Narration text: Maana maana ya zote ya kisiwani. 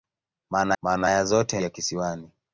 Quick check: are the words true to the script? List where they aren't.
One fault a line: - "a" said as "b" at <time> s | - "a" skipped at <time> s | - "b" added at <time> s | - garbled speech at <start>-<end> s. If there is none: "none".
none